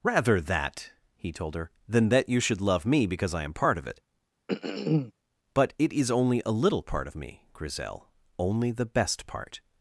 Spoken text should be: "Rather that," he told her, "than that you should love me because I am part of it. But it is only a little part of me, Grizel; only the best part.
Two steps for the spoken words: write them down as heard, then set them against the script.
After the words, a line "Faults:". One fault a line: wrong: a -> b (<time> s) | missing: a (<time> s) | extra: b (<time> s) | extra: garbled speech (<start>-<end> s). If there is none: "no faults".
"Rather that," he told her, "than that you should love me because I am part of it. But it is only a little part of me, Grizel; only the best part.
Faults:
no faults